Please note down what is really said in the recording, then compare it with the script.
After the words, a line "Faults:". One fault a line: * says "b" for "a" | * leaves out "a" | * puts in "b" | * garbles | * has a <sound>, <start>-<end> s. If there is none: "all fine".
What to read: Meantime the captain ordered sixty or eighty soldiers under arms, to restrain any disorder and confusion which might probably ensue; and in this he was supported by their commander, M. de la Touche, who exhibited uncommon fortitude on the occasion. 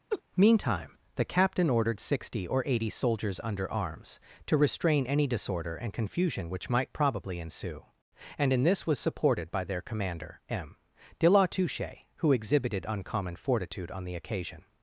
Meantime the captain ordered sixty or eighty soldiers under arms, to restrain any disorder and confusion which might probably ensue; and in this was supported by their commander, M. de la Touche, who exhibited uncommon fortitude on the occasion.
Faults:
* has a laugh, 0.1-0.2 s
* leaves out "he"